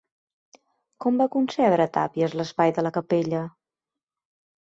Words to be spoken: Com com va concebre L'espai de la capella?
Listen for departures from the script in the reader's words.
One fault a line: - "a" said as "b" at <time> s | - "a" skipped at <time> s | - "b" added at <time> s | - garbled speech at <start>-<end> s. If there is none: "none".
- "com" skipped at 1.2 s
- "Tàpies" added at 2.0 s